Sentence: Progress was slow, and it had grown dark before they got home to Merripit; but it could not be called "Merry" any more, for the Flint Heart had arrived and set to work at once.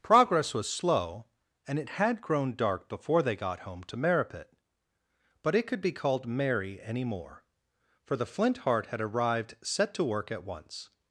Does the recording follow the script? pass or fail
fail